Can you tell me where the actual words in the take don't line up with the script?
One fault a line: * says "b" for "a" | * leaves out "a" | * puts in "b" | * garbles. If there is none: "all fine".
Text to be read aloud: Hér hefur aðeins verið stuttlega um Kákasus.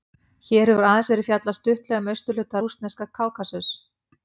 * puts in "fjallað"
* puts in "austurhluta rússneska"